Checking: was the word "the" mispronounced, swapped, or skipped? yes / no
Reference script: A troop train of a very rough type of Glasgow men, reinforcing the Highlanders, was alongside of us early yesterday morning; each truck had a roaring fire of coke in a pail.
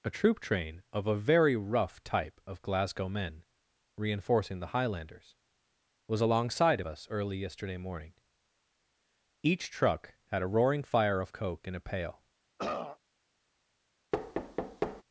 no